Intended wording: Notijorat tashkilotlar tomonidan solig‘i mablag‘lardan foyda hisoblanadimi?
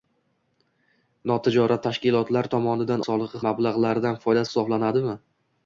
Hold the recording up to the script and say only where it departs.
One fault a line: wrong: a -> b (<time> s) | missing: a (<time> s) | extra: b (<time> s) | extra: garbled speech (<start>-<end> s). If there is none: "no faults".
no faults